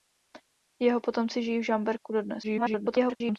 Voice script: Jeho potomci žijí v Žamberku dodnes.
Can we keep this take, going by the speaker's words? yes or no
no